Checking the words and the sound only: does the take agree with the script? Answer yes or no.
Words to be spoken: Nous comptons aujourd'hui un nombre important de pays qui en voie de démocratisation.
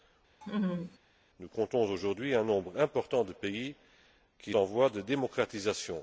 no